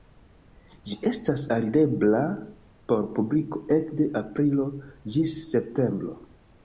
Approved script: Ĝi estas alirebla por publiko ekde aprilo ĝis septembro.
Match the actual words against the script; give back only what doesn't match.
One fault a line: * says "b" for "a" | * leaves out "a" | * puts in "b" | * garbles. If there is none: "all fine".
all fine